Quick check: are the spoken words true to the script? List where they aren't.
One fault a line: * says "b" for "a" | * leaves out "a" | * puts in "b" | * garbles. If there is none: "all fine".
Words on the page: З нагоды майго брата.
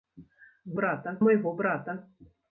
* says "брата" for "нагоды"